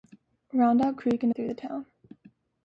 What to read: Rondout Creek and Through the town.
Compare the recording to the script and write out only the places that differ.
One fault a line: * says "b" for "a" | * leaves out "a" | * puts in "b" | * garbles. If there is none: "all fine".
all fine